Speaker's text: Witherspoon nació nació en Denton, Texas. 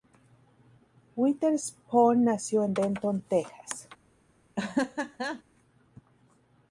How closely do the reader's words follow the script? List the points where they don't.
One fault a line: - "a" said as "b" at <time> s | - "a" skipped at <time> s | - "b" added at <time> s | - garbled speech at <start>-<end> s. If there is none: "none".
- "nació" skipped at 2.6 s